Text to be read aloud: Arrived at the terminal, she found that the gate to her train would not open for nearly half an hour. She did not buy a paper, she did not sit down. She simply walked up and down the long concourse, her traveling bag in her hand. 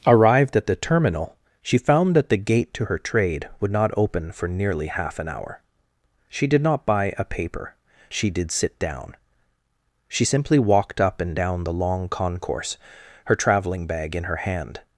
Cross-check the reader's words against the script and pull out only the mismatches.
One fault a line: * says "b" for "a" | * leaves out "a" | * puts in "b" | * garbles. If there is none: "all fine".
* says "trade" for "train"
* leaves out "not"